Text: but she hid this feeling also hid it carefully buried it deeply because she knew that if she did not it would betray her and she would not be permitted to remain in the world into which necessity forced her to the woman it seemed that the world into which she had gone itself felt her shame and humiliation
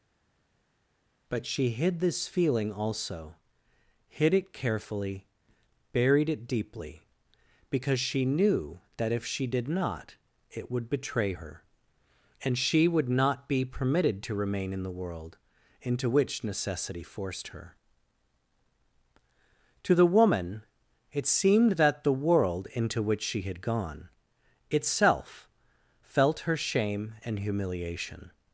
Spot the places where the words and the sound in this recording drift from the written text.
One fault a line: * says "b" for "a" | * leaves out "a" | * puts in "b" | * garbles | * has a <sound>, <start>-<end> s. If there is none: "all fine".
all fine